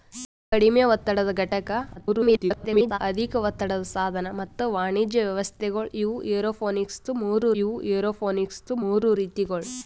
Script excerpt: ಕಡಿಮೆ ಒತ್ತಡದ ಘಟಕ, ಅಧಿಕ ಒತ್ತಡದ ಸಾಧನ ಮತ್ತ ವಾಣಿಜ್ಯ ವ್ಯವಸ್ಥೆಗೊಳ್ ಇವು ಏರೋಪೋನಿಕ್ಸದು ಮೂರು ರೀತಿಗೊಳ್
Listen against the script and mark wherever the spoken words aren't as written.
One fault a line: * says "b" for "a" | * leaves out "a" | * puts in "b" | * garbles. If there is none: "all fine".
* garbles
* puts in "ಇವು ಏರೋಪೋನಿಕ್ಸದು ಮೂರು"